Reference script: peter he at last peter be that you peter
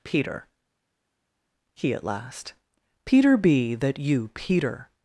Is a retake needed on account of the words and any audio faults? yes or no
no